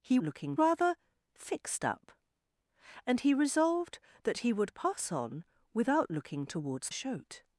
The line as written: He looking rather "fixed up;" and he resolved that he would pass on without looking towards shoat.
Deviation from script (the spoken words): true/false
false